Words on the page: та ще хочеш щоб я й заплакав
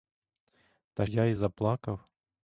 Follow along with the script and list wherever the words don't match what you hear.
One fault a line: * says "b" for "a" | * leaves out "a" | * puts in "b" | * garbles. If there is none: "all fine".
* leaves out "ще хочеш щоб"